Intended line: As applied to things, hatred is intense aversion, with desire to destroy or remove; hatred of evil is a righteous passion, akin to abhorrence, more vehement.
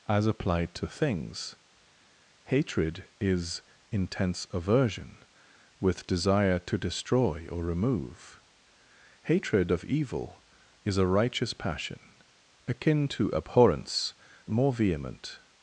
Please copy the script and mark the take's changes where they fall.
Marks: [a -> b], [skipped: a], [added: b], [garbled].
As applied to things, hatred is intense aversion, with desire to destroy or remove; hatred of evil is a righteous passion, akin to abhorrence, more vehement.